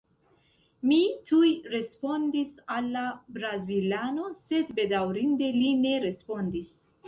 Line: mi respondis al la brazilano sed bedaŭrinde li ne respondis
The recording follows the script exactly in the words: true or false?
false